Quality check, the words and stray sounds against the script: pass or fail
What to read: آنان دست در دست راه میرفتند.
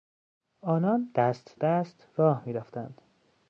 fail